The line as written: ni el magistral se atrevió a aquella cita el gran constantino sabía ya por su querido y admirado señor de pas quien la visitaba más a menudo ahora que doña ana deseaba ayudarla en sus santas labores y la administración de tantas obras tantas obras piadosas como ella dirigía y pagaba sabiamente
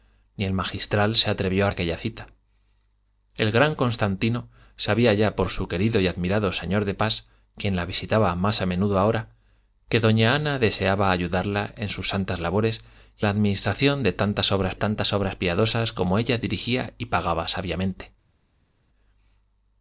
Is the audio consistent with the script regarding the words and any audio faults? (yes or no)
yes